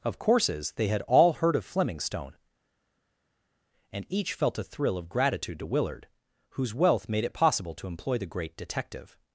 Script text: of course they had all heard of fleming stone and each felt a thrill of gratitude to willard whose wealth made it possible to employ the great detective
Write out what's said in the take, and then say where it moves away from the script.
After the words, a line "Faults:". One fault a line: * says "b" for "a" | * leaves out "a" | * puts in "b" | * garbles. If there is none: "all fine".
of courses they had all heard of fleming stone and each felt a thrill of gratitude to willard whose wealth made it possible to employ the great detective
Faults:
* says "courses" for "course"